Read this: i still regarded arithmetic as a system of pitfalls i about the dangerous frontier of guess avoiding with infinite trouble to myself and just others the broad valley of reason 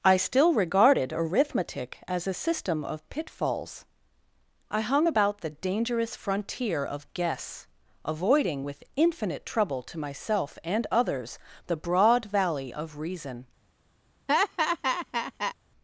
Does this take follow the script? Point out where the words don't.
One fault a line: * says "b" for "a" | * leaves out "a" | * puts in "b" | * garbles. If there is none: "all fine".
* puts in "hung"
* leaves out "just"